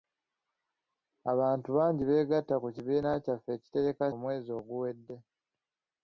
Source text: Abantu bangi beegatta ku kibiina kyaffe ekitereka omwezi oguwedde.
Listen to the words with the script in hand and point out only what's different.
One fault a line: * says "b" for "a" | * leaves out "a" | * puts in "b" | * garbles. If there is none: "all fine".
all fine